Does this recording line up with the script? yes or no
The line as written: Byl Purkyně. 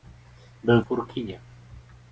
yes